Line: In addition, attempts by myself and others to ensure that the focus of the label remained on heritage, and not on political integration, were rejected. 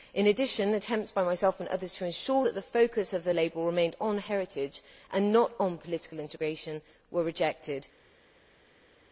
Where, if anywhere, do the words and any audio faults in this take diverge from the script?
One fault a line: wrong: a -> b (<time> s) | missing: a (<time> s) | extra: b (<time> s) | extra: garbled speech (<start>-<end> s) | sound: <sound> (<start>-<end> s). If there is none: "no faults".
no faults